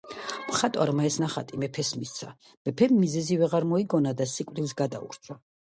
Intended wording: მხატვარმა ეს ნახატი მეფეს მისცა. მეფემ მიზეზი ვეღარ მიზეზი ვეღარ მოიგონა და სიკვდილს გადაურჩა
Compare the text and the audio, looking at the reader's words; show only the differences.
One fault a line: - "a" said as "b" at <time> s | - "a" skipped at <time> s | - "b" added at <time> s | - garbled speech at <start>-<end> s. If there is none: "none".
- "მიზეზი ვეღარ" skipped at 3.7 s